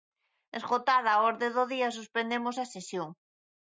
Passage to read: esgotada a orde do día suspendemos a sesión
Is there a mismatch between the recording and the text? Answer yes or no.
no